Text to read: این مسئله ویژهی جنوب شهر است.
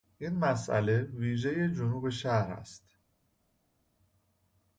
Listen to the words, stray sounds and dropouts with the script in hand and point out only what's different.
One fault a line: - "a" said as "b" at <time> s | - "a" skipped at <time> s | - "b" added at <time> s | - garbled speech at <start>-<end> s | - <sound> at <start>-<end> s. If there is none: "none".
none